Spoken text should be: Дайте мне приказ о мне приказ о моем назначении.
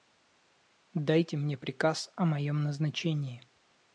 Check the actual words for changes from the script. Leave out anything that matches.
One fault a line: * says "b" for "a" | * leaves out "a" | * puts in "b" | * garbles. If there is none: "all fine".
* leaves out "мне приказ о"